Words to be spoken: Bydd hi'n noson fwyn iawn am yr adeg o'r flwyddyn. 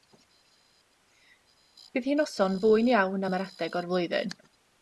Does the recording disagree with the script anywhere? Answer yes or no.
no